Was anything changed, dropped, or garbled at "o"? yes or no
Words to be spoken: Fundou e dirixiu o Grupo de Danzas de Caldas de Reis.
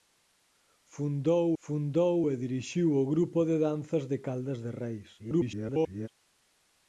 no